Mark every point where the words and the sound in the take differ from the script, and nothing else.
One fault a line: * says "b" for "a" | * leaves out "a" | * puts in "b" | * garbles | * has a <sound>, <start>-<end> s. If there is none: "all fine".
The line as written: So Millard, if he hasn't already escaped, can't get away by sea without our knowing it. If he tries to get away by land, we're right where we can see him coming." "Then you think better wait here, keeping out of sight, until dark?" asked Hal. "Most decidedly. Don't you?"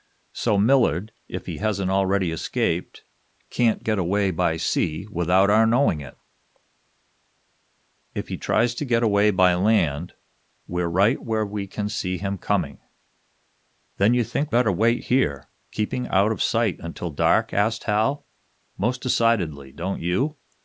all fine